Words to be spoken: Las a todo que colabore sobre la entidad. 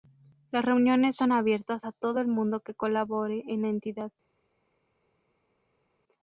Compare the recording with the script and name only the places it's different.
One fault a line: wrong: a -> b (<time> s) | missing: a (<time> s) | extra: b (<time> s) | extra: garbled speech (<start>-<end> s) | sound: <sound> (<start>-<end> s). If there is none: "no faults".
extra: reuniones son abiertas (0.7 s)
extra: el mundo (2.2 s)
wrong: sobre -> en (3.5 s)